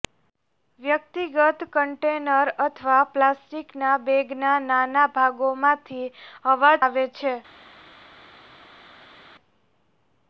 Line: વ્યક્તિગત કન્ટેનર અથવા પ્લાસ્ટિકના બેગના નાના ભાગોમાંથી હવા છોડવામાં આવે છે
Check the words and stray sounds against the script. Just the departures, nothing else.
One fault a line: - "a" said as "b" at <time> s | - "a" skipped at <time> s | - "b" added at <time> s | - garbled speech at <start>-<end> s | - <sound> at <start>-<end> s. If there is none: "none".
- "છોડવામાં" skipped at 6.8 s